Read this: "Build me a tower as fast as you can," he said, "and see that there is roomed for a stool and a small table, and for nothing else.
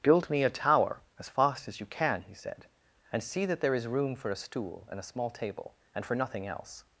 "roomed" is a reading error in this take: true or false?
true